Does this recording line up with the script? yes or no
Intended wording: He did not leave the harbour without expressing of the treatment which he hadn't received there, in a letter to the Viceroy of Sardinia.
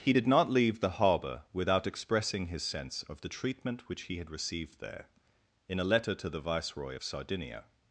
no